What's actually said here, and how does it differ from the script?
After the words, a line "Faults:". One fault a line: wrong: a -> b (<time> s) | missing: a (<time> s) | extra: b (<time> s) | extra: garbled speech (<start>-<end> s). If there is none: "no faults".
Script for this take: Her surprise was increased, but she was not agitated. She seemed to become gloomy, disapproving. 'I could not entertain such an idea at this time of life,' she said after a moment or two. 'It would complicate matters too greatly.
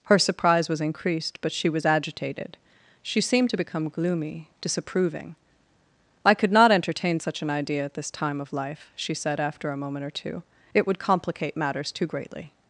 Her surprise was increased, but she was agitated. She seemed to become gloomy, disapproving. 'I could not entertain such an idea at this time of life,' she said after a moment or two. 'It would complicate matters too greatly.
Faults:
missing: not (1.9 s)